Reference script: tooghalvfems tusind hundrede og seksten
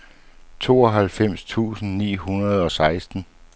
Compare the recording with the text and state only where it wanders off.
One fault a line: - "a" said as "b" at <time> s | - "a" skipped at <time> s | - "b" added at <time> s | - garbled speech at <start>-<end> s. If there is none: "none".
- "ni" added at 2.0 s